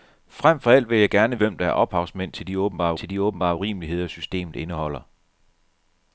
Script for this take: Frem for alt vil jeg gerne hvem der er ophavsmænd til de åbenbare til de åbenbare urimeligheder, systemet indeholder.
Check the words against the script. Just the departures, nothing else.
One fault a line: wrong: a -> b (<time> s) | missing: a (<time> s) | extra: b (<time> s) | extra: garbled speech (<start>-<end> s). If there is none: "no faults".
no faults